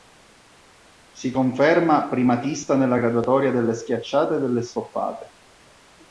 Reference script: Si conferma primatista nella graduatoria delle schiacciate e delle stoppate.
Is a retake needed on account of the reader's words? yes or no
no